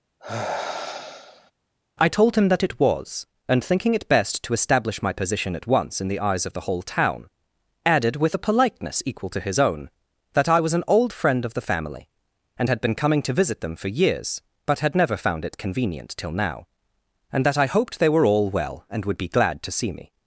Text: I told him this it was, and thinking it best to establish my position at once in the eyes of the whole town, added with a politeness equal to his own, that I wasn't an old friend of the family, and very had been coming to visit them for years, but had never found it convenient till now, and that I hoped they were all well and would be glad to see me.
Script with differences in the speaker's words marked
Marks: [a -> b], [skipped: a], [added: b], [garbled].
I told him [this -> that] it was, and thinking it best to establish my position at once in the eyes of the whole town, added with a politeness equal to his own, that I [wasn't -> was] an old friend of the family, and [skipped: very] had been coming to visit them for years, but had never found it convenient till now, and that I hoped they were all well and would be glad to see me.